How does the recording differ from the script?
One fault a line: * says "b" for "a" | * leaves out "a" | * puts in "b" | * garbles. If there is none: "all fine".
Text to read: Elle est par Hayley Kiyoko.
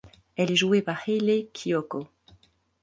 * puts in "jouée"